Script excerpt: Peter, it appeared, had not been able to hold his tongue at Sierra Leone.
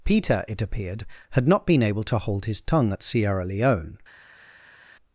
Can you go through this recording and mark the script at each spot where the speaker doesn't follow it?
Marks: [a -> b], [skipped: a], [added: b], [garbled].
Peter, it appeared, had not been able to hold his tongue at Sierra Leone.